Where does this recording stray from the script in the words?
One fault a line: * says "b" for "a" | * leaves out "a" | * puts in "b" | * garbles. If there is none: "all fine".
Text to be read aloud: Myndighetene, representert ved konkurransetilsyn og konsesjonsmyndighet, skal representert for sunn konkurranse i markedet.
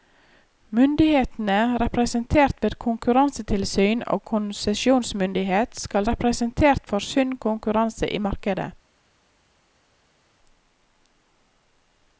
all fine